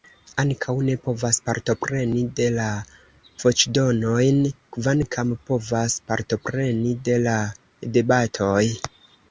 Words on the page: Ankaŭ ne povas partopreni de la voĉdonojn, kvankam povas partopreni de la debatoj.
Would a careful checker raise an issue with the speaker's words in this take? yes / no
no